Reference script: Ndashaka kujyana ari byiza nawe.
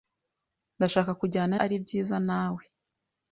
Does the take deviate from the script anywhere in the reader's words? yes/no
no